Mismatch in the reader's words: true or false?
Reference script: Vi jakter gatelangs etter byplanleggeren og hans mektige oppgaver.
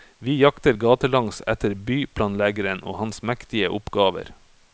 false